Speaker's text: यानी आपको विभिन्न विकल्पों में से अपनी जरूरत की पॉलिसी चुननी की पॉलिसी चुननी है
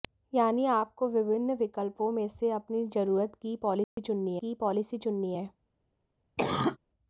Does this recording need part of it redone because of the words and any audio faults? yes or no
yes